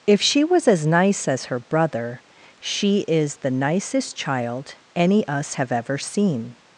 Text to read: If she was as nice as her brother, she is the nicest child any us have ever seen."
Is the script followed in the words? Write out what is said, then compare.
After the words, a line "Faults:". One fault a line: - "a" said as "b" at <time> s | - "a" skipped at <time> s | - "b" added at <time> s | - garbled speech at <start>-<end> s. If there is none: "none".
If she was as nice as her brother, she is the nicest child any us have ever seen."
Faults:
none